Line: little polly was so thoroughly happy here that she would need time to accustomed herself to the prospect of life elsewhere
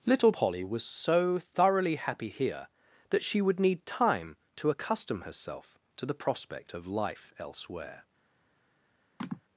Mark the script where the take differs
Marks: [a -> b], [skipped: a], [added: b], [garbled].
little polly was so thoroughly happy here that she would need time to [accustomed -> accustom] herself to the prospect of life elsewhere